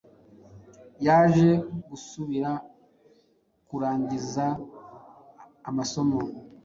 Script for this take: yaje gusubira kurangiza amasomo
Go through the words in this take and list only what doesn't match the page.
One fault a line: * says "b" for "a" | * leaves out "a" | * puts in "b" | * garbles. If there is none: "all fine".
all fine